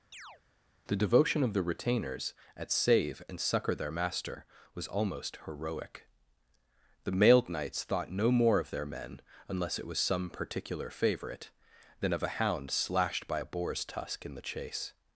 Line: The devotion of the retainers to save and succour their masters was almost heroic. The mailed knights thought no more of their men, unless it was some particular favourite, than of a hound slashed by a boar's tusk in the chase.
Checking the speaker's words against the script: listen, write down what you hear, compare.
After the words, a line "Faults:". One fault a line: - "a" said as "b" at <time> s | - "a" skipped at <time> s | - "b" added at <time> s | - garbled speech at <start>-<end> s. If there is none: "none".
The devotion of the retainers at save and succour their master was almost heroic. The mailed knights thought no more of their men, unless it was some particular favourite, than of a hound slashed by a boar's tusk in the chase.
Faults:
- "to" said as "at" at 2.5 s
- "masters" said as "master" at 3.9 s